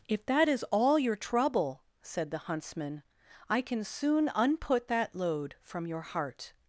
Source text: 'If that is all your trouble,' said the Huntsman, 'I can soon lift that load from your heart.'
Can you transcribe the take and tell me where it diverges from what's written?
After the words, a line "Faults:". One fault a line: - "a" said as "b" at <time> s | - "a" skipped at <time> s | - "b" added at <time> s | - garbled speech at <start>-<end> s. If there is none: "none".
'If that is all your trouble,' said the Huntsman, 'I can soon unput that load from your heart.'
Faults:
- "lift" said as "unput" at 4.3 s